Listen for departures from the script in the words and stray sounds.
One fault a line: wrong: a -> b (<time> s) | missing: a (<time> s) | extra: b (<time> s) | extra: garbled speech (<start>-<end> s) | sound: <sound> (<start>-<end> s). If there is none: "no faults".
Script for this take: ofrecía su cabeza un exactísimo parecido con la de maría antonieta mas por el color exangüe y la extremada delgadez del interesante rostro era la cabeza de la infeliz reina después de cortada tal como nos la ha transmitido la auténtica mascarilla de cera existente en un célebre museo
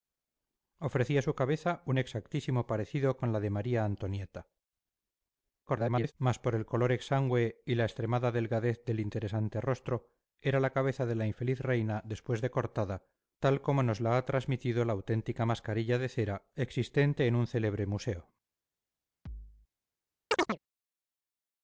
extra: garbled speech (5.7-6.1 s)
sound: thud (19.3-19.7 s)
sound: chirp (20.3-20.6 s)